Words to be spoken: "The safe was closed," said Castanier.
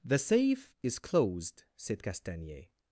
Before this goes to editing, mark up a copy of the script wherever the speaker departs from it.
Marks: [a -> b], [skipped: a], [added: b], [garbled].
"The safe [was -> is] closed," said Castanier.